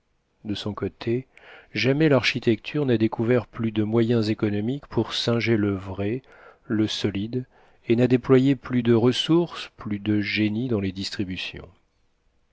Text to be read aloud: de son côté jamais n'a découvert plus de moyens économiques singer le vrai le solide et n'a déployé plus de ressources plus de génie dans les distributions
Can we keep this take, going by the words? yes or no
no